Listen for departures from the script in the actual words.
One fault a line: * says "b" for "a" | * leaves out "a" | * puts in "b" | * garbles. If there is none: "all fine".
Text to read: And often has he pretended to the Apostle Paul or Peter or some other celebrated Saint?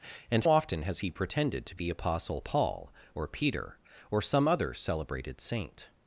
all fine